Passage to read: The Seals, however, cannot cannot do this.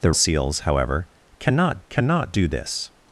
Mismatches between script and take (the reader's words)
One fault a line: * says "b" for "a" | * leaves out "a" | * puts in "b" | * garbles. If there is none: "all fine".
all fine